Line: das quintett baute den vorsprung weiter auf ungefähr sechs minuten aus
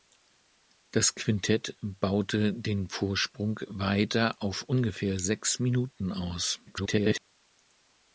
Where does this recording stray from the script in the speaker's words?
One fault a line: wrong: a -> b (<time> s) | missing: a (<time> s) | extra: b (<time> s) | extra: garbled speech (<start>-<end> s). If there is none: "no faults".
extra: garbled speech (6.7-7.2 s)